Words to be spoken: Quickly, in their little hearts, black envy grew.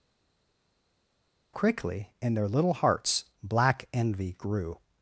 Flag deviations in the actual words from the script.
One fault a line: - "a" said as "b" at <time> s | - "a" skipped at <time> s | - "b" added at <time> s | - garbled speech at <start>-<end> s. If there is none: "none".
none